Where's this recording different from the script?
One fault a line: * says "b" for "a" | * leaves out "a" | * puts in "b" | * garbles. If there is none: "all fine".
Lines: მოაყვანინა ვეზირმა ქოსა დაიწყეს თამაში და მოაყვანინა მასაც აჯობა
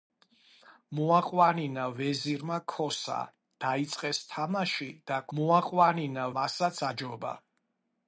all fine